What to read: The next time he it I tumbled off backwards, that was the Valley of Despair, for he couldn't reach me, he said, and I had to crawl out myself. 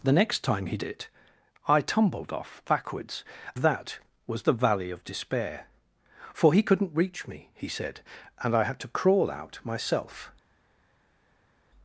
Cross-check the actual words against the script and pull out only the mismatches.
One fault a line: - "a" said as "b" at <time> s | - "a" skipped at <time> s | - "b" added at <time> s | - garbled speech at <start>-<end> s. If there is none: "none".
none